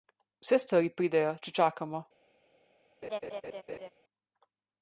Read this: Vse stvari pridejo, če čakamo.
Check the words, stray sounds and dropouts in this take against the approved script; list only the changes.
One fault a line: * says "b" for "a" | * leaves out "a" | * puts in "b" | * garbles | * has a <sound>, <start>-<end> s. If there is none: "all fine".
* has a laugh, 3.0-3.9 s